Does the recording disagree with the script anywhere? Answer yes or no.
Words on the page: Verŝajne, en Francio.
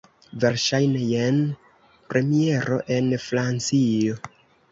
yes